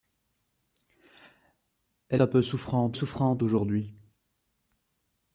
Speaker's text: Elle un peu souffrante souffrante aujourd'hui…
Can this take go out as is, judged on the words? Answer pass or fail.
pass